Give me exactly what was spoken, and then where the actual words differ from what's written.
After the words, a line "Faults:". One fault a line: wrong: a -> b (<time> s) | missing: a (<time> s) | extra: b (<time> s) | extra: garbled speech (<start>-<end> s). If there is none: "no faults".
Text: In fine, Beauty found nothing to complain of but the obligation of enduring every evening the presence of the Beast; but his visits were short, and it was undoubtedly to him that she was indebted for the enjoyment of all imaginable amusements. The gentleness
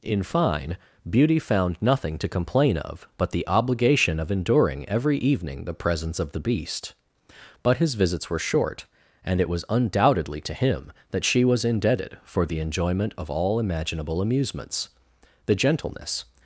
In fine, Beauty found nothing to complain of but the obligation of enduring every evening the presence of the Beast; but his visits were short, and it was undoubtedly to him that she was indebted for the enjoyment of all imaginable amusements. The gentleness
Faults:
no faults